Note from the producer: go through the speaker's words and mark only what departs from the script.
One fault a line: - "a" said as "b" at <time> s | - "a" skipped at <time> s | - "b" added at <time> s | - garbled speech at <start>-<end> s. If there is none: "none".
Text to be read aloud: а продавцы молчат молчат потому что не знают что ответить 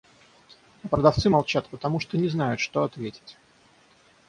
- "молчат" skipped at 1.7 s